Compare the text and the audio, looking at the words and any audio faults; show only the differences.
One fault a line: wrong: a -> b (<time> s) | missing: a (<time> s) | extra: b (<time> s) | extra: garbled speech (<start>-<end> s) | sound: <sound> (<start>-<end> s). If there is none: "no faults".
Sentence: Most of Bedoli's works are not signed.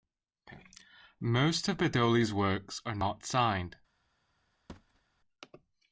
sound: thud (4.7-5.0 s)